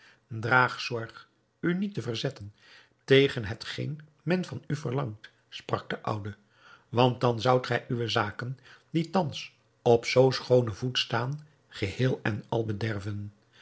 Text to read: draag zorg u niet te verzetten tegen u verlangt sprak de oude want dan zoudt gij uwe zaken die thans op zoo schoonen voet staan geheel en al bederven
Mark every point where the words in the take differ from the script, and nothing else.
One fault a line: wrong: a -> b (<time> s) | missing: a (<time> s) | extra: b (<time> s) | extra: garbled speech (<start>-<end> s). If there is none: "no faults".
extra: hetgeen men van (3.4 s)